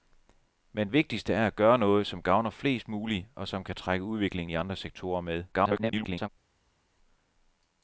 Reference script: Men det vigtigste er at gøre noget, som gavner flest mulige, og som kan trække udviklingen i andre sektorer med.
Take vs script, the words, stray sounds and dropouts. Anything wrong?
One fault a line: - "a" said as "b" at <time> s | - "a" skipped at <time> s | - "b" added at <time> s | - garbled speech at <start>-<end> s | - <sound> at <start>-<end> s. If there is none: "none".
- "det" skipped at 0.9 s
- garbled speech at 5.5-6.3 s